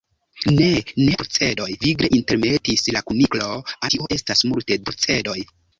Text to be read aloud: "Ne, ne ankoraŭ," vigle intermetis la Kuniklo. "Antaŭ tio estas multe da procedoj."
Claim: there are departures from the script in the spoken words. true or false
true